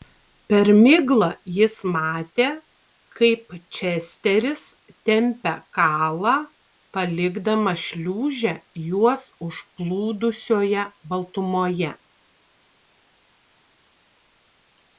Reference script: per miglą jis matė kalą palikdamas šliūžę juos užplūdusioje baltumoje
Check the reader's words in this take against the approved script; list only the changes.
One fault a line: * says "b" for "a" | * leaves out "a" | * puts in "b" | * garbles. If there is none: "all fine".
* puts in "kaip česteris tempia"